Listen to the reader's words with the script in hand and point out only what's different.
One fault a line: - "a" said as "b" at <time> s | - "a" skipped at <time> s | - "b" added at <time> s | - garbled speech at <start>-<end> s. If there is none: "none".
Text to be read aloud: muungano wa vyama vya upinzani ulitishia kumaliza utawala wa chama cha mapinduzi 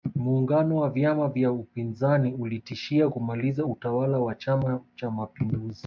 none